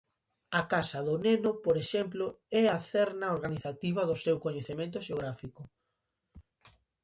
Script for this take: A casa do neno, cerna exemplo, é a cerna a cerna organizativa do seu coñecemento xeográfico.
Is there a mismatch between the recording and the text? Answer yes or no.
yes